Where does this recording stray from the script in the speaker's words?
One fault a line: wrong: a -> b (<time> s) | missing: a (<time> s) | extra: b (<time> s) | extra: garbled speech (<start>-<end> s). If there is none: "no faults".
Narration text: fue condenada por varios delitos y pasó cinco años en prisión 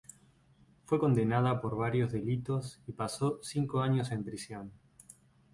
no faults